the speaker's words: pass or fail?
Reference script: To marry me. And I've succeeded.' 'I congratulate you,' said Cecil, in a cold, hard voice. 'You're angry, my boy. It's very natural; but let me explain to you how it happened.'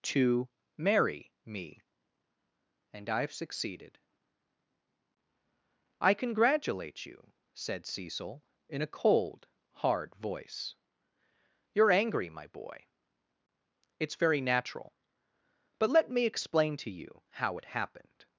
pass